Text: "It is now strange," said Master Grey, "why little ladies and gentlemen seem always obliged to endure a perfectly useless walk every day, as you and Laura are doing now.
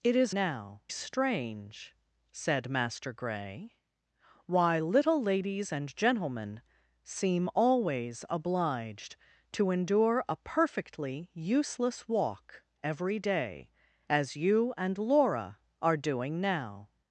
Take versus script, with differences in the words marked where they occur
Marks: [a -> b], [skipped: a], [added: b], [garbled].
"It is now strange," said Master Grey, "why little ladies and gentlemen seem always obliged to endure a perfectly useless walk every day, as you and Laura are doing now.